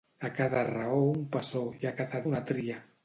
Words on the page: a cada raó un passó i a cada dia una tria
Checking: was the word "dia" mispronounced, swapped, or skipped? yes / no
yes